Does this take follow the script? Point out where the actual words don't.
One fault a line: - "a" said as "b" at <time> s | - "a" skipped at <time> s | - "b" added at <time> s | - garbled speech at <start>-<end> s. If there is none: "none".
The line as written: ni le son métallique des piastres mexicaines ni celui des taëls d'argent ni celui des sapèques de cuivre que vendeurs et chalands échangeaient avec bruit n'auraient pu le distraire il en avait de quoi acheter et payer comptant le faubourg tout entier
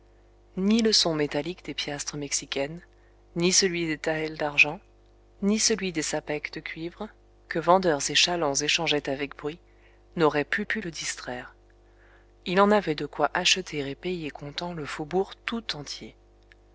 - "pu" added at 10.6 s